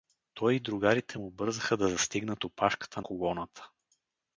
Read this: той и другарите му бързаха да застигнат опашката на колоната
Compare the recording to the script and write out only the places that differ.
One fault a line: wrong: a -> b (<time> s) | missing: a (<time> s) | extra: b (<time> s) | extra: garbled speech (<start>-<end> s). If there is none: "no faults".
missing: на (3.0 s)